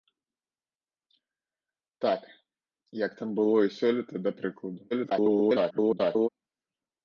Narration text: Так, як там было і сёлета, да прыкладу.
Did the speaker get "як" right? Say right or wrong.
right